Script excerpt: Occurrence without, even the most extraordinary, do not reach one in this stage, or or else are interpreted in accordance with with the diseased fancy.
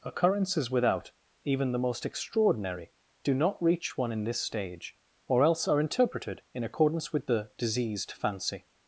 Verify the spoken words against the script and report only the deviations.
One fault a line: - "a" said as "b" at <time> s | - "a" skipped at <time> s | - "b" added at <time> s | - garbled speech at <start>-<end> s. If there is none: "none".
- "Occurrence" said as "Occurrences" at 0.0 s
- "or" skipped at 5.4 s
- "with" skipped at 7.3 s